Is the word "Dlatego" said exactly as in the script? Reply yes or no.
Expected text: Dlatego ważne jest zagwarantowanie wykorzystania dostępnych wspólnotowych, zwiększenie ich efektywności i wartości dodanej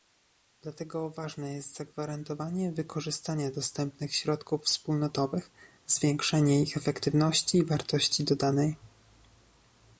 yes